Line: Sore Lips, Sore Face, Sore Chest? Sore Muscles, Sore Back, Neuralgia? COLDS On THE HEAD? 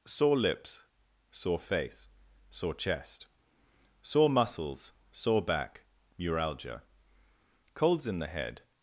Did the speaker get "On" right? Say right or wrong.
wrong